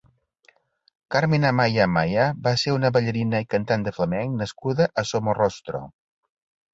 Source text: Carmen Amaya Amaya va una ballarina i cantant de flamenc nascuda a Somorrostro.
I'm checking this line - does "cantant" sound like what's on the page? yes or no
yes